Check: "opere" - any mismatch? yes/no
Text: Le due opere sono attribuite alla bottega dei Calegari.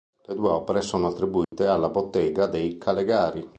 no